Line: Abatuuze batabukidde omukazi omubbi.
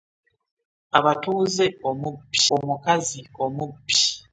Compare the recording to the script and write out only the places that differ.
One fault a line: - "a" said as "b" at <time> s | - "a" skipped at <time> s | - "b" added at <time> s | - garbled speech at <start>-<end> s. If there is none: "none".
- "batabukidde" said as "omubbi" at 1.9 s